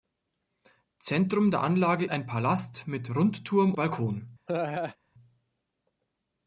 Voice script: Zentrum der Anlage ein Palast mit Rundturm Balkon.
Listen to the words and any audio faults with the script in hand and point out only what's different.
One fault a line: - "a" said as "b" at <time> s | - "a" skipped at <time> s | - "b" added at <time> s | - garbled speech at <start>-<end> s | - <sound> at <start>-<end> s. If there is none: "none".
- laugh at 4.5-5.0 s